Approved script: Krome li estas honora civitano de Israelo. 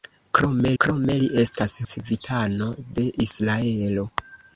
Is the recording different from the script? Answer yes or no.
yes